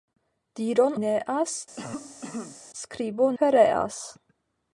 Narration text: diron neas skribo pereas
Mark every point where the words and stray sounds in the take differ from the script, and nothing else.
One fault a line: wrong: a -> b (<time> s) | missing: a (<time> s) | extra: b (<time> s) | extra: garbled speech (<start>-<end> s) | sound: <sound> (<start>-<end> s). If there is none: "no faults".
sound: cough (1.8-2.6 s)